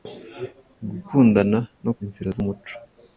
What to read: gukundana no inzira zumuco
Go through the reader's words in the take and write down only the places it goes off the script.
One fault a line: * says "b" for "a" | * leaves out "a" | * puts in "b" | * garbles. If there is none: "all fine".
all fine